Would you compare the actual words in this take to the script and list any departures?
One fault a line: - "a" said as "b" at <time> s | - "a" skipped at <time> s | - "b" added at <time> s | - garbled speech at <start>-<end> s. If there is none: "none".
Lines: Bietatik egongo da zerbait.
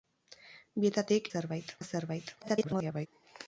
- "egongo" said as "zerbait" at 1.3 s
- garbled speech at 2.4-3.1 s